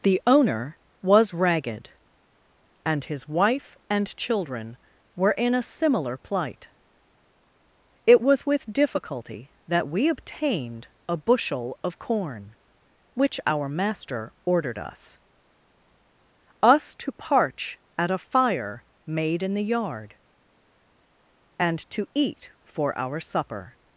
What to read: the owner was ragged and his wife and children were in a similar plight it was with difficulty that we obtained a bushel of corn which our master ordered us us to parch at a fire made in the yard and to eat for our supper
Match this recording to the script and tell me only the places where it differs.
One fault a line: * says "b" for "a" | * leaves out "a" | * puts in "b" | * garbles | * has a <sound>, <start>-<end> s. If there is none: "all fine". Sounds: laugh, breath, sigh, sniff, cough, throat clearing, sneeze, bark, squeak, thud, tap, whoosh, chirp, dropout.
all fine